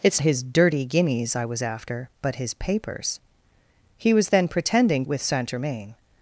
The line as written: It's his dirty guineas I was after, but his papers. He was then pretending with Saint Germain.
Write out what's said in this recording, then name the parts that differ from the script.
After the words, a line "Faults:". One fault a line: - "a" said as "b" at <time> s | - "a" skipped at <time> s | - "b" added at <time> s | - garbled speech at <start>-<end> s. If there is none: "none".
It's his dirty guineas I was after, but his papers. He was then pretending with Saint Germain.
Faults:
none